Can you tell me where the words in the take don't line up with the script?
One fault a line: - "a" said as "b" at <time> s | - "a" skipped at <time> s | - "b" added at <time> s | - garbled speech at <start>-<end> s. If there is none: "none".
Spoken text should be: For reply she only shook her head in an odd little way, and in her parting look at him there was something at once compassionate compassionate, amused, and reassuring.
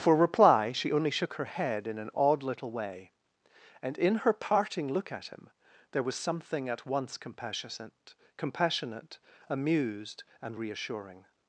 none